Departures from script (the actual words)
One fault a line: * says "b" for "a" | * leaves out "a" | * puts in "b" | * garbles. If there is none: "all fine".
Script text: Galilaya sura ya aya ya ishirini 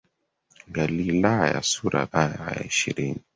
all fine